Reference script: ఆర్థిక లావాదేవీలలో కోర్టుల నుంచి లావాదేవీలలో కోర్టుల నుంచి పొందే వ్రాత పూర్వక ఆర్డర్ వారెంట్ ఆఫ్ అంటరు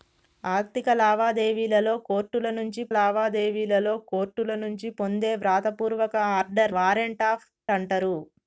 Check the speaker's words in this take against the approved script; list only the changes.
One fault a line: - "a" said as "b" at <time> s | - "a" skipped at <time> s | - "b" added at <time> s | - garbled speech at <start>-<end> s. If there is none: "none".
none